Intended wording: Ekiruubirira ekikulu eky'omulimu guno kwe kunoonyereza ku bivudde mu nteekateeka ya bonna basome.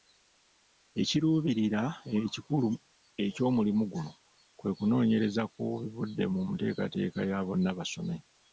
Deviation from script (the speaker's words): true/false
false